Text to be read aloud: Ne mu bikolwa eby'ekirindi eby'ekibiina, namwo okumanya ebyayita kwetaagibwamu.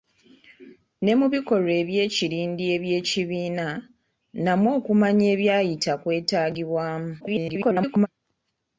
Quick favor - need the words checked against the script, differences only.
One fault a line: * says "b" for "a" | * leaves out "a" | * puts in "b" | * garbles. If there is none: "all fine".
* garbles